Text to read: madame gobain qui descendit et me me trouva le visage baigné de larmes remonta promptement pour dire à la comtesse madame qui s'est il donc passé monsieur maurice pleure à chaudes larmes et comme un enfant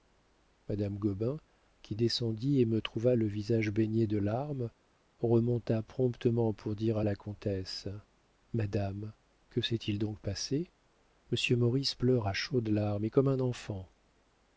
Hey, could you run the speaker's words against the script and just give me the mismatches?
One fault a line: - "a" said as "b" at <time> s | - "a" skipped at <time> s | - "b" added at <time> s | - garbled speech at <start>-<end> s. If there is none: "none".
- "me" skipped at 2.8 s
- "qui" said as "que" at 9.5 s